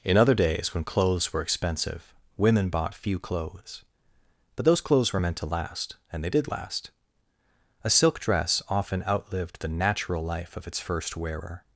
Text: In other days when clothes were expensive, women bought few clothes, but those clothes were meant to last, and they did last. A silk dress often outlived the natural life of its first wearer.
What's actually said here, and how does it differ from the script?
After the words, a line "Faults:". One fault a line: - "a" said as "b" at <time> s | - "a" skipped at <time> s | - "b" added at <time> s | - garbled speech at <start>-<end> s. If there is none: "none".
In other days when clothes were expensive, women bought few clothes, but those clothes were meant to last, and they did last. A silk dress often outlived the natural life of its first wearer.
Faults:
none